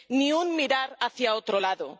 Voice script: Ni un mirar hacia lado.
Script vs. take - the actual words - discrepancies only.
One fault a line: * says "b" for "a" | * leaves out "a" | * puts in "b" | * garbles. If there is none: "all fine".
* puts in "otro"